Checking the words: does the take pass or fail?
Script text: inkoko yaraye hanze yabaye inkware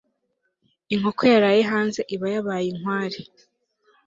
fail